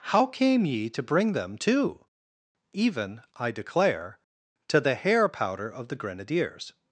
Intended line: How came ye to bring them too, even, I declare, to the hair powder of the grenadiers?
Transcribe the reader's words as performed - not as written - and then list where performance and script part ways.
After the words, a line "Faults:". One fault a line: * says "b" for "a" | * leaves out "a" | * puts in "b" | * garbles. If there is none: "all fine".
How came ye to bring them too, even, I declare, to the hair powder of the grenadiers?
Faults:
all fine